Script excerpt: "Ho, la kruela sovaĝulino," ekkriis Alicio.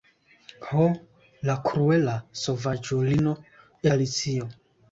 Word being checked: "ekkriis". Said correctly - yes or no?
no